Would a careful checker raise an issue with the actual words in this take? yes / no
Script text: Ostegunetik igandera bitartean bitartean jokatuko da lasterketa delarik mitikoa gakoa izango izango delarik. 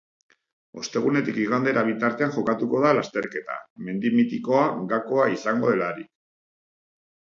yes